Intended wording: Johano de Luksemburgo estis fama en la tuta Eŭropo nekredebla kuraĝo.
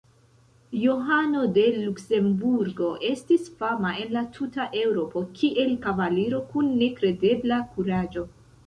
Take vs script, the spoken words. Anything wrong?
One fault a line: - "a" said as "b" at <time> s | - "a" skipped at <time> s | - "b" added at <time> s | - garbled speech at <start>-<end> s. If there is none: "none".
- "kiel kavaliro kun" added at 5.4 s